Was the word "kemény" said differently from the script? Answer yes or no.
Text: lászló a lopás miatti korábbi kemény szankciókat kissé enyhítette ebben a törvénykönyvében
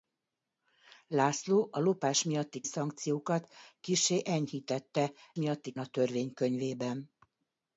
yes